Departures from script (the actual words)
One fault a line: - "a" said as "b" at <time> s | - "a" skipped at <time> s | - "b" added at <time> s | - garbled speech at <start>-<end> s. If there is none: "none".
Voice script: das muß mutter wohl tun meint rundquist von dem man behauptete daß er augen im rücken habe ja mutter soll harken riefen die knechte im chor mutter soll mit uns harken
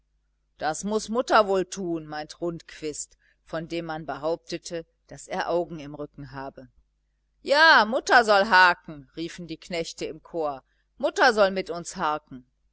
none